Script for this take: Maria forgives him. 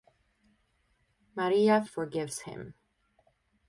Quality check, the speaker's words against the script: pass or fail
pass